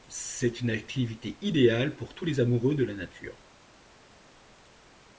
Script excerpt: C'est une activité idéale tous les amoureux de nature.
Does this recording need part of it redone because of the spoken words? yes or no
yes